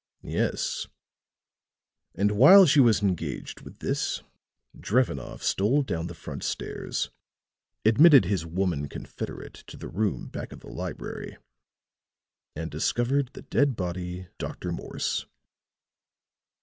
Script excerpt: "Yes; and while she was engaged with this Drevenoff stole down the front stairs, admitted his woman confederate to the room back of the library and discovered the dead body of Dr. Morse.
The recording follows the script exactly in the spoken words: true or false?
false